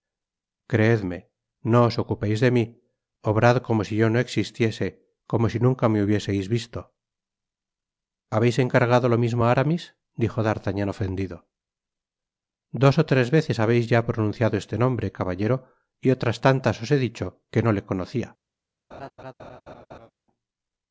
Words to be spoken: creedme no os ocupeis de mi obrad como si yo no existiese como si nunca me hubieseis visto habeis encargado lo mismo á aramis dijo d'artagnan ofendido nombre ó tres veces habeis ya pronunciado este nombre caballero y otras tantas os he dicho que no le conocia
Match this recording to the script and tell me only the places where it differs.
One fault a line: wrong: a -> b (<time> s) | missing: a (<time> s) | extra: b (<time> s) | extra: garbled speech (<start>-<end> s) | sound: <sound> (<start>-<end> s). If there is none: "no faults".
wrong: nombre -> dos (12.8 s)
sound: laugh (18.9-20.1 s)